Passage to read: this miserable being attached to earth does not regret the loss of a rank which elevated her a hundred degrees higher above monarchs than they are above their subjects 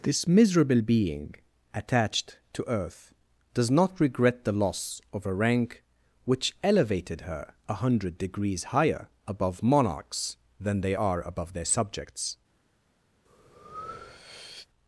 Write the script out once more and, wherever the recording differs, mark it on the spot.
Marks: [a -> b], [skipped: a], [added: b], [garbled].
this miserable being attached to earth does not regret the loss of a rank which elevated her a hundred degrees higher above monarchs than they are above their subjects